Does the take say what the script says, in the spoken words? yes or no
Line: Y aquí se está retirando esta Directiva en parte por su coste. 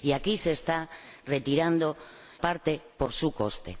no